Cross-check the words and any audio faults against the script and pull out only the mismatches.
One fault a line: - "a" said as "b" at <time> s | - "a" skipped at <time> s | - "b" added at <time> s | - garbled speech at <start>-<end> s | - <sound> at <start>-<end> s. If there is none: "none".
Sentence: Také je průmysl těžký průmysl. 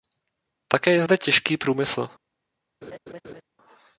- "průmysl" said as "zde" at 1.0 s
- laugh at 2.8-3.4 s